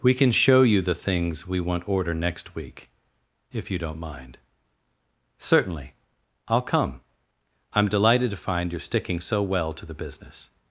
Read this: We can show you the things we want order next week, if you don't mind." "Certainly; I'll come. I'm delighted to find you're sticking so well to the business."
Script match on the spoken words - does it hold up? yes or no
yes